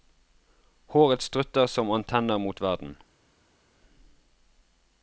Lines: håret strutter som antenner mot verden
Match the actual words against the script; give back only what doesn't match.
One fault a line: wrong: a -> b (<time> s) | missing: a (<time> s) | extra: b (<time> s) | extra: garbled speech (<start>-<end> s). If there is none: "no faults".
no faults